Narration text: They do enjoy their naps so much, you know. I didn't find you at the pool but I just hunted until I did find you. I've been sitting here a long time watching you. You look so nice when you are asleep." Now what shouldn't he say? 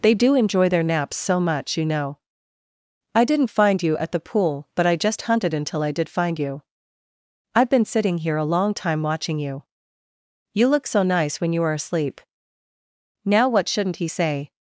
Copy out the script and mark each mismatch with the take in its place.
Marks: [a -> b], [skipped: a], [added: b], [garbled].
They do enjoy their naps so much, you know. I didn't find you at the pool but I just hunted until I did find you. I've been sitting here a long time watching you. You look so nice when you are asleep." Now what shouldn't he say?